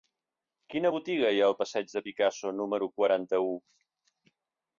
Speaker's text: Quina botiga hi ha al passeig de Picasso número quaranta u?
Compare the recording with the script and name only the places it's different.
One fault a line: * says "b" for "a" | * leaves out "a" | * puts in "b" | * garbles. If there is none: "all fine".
all fine